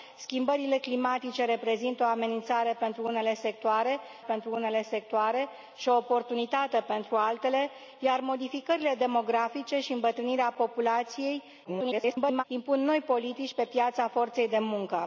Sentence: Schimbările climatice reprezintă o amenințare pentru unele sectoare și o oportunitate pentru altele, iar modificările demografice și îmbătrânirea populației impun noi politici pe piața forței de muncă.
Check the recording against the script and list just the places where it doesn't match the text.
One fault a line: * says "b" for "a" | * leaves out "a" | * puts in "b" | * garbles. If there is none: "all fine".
* puts in "pentru unele sectoare"
* garbles